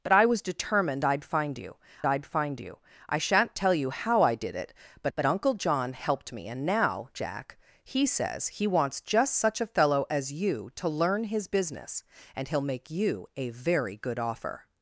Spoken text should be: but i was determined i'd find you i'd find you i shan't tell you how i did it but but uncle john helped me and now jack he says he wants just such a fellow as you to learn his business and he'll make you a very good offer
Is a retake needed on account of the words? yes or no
no